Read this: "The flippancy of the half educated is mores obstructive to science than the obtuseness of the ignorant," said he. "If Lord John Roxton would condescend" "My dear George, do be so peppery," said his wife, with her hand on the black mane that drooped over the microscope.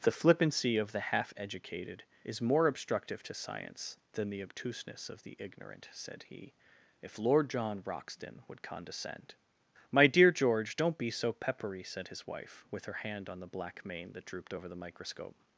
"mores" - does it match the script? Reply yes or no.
no